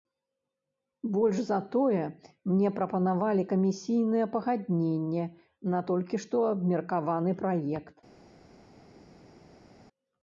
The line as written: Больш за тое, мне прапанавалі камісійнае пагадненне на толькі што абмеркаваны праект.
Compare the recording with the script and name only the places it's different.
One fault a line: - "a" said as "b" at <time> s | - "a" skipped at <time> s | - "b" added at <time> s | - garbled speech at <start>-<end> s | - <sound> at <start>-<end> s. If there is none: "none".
none